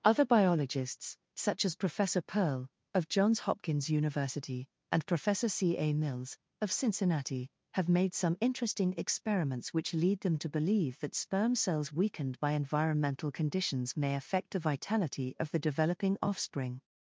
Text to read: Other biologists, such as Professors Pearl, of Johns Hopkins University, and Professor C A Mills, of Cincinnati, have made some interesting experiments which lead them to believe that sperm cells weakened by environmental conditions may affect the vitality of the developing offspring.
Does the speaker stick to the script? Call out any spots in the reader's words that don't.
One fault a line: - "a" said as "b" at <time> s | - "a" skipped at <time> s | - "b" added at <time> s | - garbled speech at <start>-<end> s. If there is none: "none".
- "Professors" said as "Professor" at 1.7 s